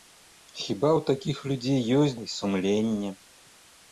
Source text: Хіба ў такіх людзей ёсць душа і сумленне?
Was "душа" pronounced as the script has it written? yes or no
no